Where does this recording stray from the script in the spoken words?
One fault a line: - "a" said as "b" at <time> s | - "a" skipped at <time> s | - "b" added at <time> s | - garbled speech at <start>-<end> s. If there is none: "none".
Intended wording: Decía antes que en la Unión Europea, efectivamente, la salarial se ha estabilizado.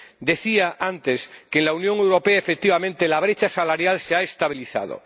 - "brecha" added at 3.2 s